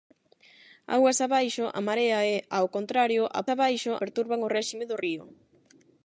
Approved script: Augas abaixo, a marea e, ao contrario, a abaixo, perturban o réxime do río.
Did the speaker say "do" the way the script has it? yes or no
yes